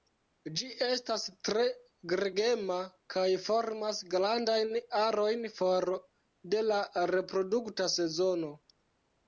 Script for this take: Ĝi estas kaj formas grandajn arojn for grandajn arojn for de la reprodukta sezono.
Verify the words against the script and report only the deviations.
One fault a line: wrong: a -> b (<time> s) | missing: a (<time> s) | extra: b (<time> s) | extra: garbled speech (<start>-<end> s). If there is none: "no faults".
extra: tre gregema (1.5 s)
missing: grandajn arojn for (5.9 s)